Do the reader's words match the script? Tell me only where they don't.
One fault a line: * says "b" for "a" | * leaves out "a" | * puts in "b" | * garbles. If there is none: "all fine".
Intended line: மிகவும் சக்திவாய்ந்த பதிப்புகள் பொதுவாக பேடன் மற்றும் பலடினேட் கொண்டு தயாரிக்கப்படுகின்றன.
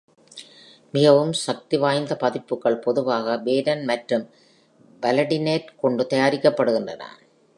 all fine